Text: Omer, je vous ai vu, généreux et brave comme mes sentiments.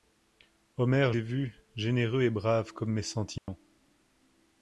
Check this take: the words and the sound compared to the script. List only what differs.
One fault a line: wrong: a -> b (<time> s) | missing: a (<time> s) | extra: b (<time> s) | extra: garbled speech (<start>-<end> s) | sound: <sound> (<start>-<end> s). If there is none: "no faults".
missing: je vous (1.1 s)
sound: dropout (3.4-3.5 s)